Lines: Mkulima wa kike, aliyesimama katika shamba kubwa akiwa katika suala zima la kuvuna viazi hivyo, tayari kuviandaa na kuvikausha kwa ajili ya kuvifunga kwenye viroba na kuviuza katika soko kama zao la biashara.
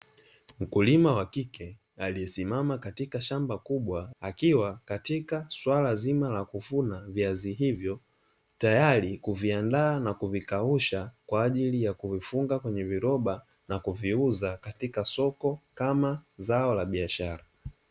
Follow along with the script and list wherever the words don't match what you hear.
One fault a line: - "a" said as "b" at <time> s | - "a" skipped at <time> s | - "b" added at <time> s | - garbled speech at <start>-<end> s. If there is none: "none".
none